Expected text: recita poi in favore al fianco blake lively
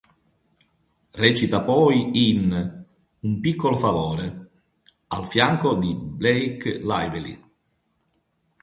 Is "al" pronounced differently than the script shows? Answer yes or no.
no